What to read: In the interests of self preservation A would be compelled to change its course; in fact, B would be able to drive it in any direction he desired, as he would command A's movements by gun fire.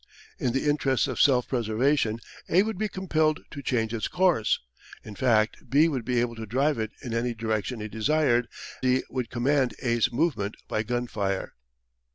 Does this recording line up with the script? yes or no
no